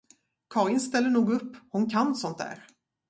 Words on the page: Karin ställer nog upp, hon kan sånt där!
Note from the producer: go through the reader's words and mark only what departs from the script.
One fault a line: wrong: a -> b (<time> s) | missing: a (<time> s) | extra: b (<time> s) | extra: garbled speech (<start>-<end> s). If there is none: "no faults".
no faults